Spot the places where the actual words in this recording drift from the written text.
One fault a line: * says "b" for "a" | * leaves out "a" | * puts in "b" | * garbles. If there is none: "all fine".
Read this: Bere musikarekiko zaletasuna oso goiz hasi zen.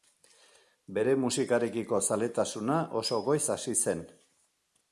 all fine